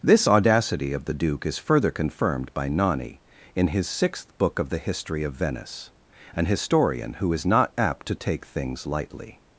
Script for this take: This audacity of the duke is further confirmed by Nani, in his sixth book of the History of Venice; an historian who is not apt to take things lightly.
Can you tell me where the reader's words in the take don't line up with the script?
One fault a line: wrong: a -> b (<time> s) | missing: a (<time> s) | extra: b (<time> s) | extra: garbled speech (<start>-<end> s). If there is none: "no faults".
no faults